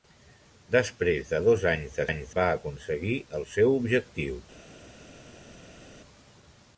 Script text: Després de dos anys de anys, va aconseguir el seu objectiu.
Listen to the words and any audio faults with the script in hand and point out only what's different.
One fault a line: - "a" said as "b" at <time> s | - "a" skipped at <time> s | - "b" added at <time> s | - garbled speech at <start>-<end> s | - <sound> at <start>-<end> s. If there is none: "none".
none